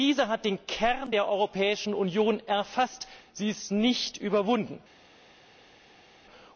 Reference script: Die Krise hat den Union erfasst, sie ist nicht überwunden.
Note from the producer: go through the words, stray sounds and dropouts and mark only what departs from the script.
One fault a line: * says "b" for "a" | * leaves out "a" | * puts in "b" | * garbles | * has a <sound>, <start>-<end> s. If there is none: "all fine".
* puts in "Kern der Europäischen"